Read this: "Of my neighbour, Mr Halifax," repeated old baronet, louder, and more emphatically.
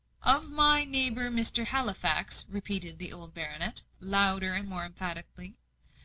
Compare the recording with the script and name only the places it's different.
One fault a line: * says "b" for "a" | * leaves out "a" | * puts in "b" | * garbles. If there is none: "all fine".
* puts in "the"